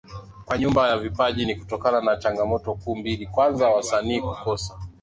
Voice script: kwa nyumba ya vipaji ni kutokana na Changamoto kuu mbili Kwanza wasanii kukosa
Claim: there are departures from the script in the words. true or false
false